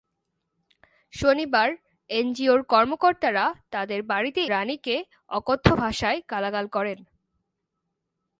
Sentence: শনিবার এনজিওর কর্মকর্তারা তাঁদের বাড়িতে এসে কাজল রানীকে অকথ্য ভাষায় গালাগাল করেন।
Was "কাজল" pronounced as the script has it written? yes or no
no